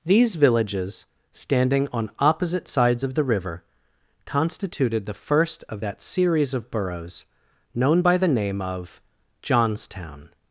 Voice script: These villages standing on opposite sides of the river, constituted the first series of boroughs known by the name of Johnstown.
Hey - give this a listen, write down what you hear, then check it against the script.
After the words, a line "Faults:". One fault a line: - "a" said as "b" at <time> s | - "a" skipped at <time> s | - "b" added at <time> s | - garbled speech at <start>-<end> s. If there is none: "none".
These villages standing on opposite sides of the river, constituted the first of that series of boroughs known by the name of Johnstown.
Faults:
- "of that" added at 5.7 s